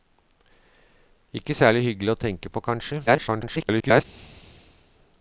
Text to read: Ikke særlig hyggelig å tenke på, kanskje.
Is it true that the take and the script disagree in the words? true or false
true